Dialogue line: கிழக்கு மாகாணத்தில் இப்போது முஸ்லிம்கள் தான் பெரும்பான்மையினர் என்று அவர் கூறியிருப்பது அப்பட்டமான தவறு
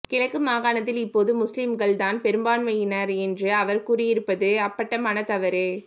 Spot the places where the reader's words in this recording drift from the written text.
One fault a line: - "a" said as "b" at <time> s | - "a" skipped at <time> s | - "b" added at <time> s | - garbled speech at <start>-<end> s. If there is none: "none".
none